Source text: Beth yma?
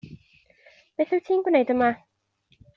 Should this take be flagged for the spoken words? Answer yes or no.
yes